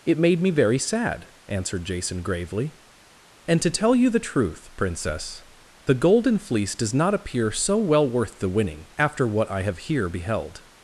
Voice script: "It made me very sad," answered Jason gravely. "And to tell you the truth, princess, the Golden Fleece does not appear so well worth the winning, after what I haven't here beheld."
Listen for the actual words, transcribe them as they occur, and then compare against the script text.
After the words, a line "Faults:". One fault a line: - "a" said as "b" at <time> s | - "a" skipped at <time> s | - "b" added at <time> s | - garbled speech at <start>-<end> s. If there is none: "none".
"It made me very sad," answered Jason gravely. "And to tell you the truth, princess, the Golden Fleece does not appear so well worth the winning, after what I have here beheld."
Faults:
- "haven't" said as "have" at 9.6 s